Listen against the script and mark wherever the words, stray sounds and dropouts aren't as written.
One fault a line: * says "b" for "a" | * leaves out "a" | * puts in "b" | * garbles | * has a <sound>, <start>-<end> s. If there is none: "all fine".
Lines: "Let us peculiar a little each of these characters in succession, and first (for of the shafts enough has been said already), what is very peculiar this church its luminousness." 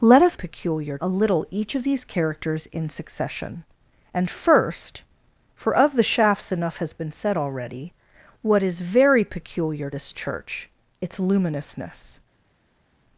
all fine